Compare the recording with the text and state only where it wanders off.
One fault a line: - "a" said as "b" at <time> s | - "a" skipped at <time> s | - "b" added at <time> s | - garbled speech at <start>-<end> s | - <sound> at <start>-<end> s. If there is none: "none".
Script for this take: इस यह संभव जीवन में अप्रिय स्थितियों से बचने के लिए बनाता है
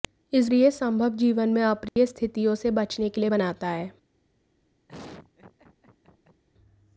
- dropout at 1.9-2.0 s
- laugh at 4.9-6.4 s